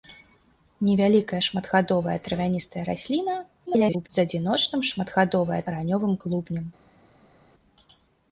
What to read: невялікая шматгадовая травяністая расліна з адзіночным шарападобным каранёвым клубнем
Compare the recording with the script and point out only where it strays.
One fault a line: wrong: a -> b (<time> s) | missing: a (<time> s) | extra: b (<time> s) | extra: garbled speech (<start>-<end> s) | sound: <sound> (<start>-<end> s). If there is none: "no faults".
extra: garbled speech (3.7-4.1 s)
wrong: шарападобным -> шматгадовая (4.9 s)